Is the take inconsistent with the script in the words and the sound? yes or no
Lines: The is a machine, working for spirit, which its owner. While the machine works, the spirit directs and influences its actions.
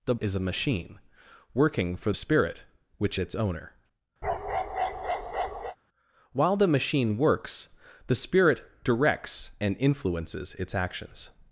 yes